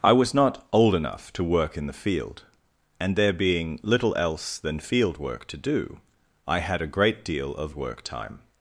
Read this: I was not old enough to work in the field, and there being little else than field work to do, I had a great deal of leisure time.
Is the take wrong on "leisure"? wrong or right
wrong